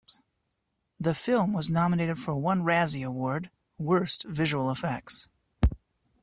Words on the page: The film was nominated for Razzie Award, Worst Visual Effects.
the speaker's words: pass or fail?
fail